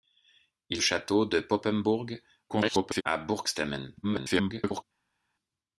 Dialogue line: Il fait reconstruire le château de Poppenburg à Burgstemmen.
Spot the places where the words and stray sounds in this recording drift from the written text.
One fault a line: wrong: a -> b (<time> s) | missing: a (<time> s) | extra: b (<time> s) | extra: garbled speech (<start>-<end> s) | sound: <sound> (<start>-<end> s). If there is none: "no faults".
missing: fait reconstruire le (0.8 s)
extra: garbled speech (2.5-3.0 s)
extra: garbled speech (4.0-4.8 s)